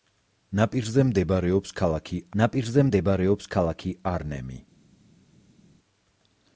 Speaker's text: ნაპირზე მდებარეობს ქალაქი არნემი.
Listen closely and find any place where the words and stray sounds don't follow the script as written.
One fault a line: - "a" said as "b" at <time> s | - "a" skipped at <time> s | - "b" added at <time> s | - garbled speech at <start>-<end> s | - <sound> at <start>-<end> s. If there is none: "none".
- "ნაპირზე მდებარეობს ქალაქი" added at 2.4 s